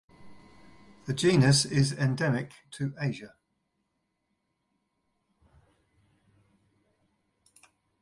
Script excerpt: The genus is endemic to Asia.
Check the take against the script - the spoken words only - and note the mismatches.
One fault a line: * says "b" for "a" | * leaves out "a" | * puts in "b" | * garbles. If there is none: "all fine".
all fine